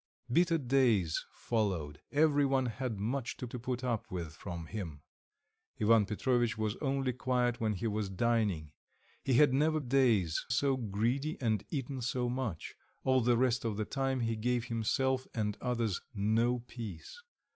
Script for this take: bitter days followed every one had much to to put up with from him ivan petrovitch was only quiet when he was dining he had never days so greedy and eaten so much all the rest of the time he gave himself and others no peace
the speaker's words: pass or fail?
pass